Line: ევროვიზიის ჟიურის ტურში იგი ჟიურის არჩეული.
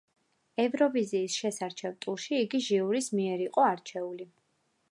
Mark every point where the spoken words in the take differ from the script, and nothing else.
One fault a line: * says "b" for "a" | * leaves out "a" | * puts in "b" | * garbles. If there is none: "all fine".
* says "შესარჩევ" for "ჟიურის"
* puts in "მიერ იყო"